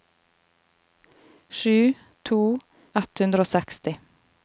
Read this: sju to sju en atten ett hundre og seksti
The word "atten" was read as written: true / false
false